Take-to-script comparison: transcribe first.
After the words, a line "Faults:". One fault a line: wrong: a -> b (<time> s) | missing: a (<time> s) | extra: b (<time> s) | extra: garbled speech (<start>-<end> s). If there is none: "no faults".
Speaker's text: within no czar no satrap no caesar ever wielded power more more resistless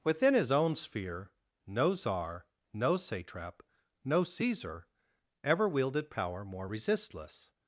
within his own sphere no czar no satrap no caesar ever wielded power more resistless
Faults:
extra: his own sphere (0.3 s)
missing: more (6.7 s)